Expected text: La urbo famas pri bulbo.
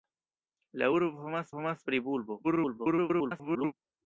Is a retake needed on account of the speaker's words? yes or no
yes